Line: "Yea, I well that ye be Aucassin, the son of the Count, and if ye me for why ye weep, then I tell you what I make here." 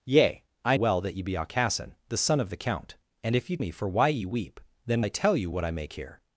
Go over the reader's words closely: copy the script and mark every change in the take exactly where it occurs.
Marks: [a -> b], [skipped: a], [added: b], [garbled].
"Yea, I well that ye be Aucassin, the son of the Count, and if ye me for why ye weep, then I tell you what I make here."